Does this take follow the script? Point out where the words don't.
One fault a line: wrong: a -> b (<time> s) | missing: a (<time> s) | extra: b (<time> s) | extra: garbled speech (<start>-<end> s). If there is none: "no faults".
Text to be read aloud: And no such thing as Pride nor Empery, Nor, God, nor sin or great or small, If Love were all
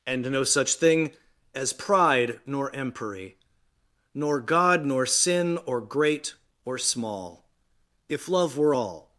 no faults